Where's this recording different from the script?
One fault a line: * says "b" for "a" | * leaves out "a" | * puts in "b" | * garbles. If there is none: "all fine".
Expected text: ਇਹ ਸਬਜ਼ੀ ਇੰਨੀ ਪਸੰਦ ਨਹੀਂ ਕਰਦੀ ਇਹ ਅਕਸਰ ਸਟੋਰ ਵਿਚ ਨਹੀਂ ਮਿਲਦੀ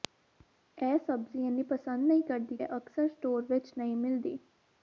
all fine